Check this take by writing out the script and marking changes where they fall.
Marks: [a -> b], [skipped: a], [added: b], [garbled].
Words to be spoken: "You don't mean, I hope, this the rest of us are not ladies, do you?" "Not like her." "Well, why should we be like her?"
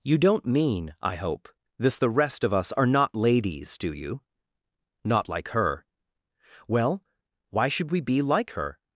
"You don't mean, I hope, this the rest of us are not ladies, do you?" "Not like her." "Well, why should we be like her?"